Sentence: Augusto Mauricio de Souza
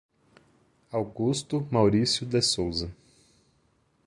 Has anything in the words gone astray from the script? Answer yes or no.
no